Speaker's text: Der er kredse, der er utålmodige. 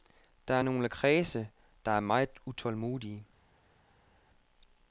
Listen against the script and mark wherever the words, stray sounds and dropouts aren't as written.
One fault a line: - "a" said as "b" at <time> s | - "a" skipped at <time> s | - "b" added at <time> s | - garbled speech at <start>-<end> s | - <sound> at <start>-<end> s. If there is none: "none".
- "nogle" added at 0.6 s
- "meget" added at 2.0 s